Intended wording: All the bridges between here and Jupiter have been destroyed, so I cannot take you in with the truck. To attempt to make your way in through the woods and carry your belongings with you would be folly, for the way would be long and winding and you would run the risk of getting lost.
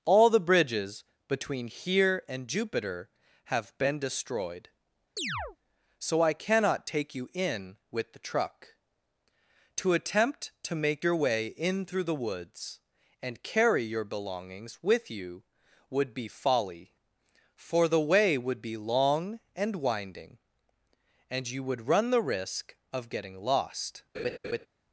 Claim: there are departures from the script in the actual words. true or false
false